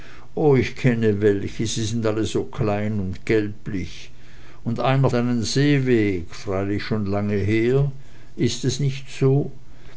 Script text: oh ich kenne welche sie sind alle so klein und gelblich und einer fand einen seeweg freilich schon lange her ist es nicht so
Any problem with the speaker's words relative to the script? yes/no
yes